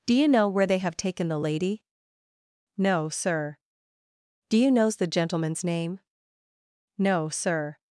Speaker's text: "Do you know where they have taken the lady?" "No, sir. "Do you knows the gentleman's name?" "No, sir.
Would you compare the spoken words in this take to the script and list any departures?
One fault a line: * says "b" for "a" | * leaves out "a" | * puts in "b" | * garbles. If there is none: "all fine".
all fine